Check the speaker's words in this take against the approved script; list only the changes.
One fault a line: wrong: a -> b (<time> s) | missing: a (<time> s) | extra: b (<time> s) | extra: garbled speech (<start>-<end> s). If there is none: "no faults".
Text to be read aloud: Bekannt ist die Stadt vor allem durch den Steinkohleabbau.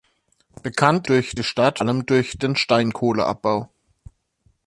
wrong: ist -> durch (1.1 s)
missing: vor (1.8 s)